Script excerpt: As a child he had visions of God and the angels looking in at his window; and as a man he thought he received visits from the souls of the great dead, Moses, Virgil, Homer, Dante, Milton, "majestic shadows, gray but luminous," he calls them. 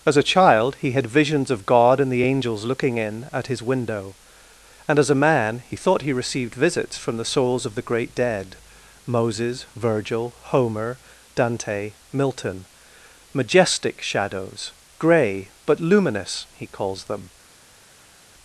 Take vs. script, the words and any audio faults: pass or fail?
pass